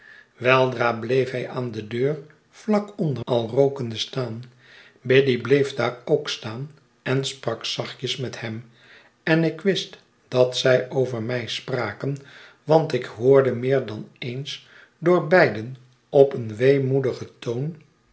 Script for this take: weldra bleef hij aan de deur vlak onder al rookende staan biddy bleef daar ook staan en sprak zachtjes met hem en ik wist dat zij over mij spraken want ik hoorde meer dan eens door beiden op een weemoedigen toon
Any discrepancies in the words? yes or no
no